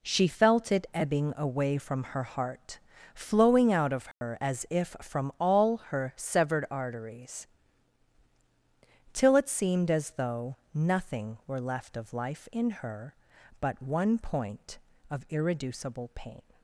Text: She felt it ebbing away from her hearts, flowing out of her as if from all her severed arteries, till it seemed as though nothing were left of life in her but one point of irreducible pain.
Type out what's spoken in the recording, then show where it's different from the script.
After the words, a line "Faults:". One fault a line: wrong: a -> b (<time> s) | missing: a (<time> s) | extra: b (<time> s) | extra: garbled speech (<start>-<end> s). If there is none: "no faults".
She felt it ebbing away from her heart, flowing out of her as if from all her severed arteries, till it seemed as though nothing were left of life in her but one point of irreducible pain.
Faults:
wrong: hearts -> heart (2.2 s)